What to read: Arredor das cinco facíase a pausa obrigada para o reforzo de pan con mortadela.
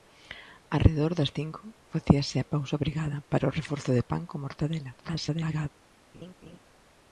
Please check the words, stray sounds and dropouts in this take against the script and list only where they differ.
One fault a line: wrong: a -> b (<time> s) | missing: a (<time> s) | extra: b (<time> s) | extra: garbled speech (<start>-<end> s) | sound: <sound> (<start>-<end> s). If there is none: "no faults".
extra: garbled speech (5.0-5.7 s)
sound: laugh (6.1-6.6 s)